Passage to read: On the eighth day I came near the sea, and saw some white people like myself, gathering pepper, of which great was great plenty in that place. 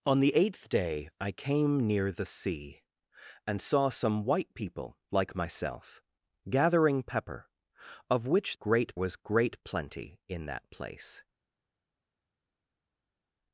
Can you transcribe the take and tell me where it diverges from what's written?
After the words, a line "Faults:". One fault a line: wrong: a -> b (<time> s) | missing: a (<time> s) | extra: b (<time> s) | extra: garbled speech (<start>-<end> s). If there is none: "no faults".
On the eighth day I came near the sea, and saw some white people like myself, gathering pepper, of which great was great plenty in that place.
Faults:
no faults